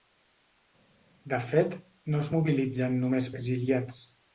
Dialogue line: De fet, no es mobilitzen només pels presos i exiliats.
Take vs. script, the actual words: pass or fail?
fail